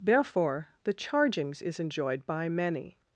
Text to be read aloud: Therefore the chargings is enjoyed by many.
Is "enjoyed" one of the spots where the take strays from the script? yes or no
no